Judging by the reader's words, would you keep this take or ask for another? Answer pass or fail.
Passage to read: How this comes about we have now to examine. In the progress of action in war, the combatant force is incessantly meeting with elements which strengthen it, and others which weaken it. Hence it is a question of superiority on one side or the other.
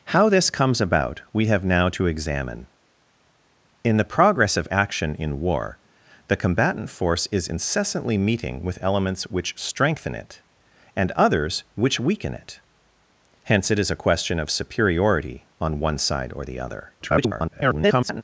fail